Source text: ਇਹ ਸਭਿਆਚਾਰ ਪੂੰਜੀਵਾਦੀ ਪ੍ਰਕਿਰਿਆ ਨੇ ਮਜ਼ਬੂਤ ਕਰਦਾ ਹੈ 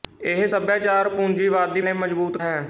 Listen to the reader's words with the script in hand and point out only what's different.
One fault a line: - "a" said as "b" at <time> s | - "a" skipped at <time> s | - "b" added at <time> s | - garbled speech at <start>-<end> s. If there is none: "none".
- "ਪ੍ਰਕਿਰਿਆ" skipped at 1.8 s
- "ਕਰਦਾ" skipped at 2.4 s